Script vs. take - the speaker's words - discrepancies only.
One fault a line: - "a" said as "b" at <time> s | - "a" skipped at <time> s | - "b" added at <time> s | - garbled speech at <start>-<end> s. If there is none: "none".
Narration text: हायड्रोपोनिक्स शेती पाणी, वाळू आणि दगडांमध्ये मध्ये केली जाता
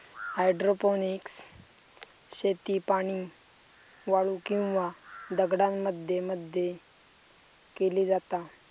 - "आणि" said as "किंवा" at 4.5 s